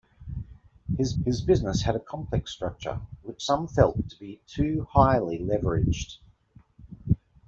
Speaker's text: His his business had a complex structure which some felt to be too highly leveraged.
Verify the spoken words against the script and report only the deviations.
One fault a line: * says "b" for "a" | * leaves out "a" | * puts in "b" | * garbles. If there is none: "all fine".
all fine